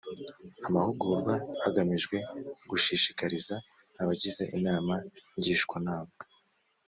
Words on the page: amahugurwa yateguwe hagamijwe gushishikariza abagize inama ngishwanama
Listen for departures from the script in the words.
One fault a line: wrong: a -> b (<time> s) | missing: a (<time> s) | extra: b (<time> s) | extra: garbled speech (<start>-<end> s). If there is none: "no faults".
missing: yateguwe (1.3 s)